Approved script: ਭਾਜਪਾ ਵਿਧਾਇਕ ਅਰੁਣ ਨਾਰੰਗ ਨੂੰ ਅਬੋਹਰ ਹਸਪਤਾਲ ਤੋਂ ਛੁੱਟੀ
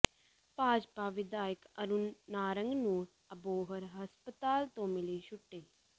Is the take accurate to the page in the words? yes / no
no